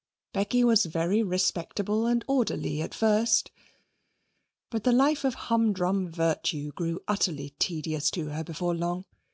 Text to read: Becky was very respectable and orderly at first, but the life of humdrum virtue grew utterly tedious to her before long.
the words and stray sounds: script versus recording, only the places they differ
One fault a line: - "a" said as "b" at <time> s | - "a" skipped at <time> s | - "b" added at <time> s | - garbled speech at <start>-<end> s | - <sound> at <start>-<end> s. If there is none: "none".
none